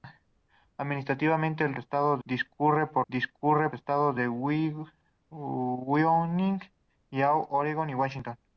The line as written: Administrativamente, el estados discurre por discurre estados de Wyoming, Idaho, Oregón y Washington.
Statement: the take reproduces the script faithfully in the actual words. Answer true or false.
true